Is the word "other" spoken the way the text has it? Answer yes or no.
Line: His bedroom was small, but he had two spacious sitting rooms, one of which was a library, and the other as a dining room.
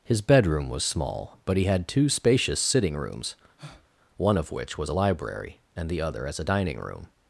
yes